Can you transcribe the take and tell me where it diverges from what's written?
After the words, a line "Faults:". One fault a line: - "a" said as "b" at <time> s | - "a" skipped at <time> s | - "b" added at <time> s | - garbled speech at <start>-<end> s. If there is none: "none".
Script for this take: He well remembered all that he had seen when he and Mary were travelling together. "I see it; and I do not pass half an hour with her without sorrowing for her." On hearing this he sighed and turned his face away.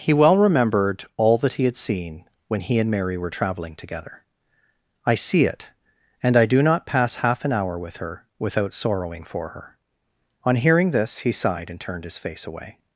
He well remembered all that he had seen when he and Mary were travelling together. "I see it; and I do not pass half an hour with her without sorrowing for her." On hearing this he sighed and turned his face away.
Faults:
none